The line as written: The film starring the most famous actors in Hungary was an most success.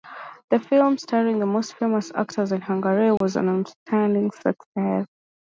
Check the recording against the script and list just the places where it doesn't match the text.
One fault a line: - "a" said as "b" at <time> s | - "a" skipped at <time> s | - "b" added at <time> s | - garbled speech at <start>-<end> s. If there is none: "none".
- "most" said as "outstanding" at 3.5 s